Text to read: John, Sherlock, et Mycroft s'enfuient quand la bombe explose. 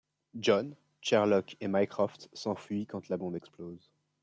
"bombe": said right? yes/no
yes